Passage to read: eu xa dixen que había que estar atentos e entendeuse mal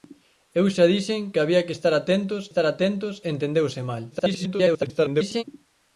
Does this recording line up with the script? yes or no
no